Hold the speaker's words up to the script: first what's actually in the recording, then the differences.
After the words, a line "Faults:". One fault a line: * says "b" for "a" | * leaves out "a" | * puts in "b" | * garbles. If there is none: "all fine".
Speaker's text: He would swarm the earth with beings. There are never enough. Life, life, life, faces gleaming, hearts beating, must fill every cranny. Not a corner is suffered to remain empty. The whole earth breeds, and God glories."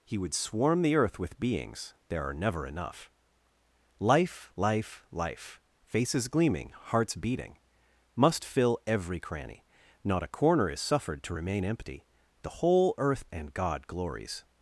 He would swarm the earth with beings. There are never enough. Life, life, life, faces gleaming, hearts beating, must fill every cranny. Not a corner is suffered to remain empty. The whole earth and God glories."
Faults:
* leaves out "breeds"